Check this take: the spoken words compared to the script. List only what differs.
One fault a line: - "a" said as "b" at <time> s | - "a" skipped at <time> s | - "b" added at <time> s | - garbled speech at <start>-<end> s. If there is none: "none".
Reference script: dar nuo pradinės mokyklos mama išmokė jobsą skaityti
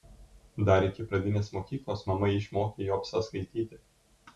- "nuo" said as "iki" at 0.9 s